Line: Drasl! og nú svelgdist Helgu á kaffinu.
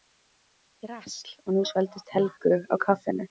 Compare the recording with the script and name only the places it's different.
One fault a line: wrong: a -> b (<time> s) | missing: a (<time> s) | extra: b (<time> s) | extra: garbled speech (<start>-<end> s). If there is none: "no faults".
no faults